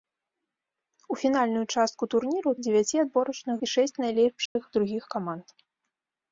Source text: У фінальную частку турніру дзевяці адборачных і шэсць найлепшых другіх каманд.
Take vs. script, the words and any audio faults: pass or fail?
fail